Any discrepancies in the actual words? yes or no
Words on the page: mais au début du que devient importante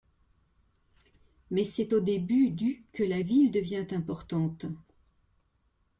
yes